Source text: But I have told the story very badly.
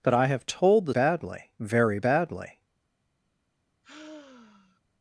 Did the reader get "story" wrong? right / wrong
wrong